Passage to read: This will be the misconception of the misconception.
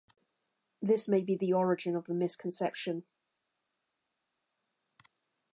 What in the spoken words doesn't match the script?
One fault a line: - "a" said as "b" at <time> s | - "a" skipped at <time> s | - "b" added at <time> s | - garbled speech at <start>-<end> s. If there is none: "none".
- "will" said as "may" at 1.1 s
- "misconception" said as "origin" at 1.5 s